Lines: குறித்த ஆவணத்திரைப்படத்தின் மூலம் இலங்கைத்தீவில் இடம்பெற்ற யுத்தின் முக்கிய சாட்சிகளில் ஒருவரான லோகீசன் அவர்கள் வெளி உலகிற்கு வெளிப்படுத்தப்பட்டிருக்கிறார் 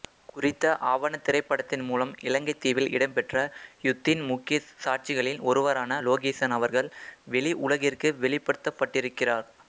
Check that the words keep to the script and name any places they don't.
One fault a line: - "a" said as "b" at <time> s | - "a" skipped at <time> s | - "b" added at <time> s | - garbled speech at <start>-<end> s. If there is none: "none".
none